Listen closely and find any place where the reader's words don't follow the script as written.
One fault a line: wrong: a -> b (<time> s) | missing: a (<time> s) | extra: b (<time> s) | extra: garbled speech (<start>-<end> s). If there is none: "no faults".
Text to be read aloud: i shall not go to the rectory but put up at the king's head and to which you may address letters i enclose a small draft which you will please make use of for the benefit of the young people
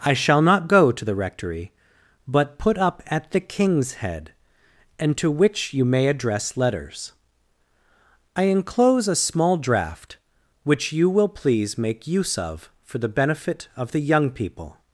no faults